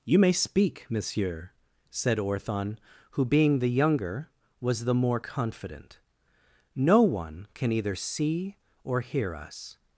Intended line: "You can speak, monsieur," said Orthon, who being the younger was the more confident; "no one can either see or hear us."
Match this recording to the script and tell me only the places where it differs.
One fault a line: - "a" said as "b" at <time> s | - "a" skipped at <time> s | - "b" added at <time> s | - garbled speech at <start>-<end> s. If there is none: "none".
- "can" said as "may" at 0.2 s